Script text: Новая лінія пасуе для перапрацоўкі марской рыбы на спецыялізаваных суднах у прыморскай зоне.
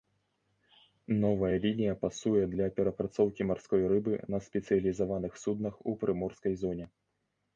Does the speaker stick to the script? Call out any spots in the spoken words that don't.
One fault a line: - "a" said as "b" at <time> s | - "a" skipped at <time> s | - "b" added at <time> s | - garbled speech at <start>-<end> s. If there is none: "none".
none